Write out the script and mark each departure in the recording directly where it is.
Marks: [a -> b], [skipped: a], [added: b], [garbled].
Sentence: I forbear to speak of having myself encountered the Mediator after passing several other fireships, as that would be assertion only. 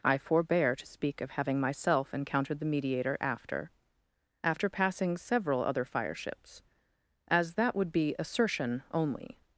I forbear to speak of having myself encountered the Mediator after [added: after] passing several other fireships, as that would be assertion only.